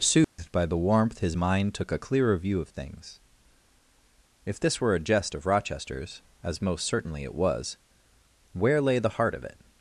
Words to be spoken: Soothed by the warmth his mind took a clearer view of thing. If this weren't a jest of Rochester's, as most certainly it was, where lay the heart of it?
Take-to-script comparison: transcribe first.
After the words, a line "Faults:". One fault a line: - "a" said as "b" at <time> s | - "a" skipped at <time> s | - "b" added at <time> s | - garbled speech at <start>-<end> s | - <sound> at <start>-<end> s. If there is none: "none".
Soothed by the warmth his mind took a clearer view of things. If this were a jest of Rochester's, as most certainly it was, where lay the heart of it?
Faults:
- dropout at 0.2-0.4 s
- "thing" said as "things" at 2.7 s
- "weren't" said as "were" at 4.8 s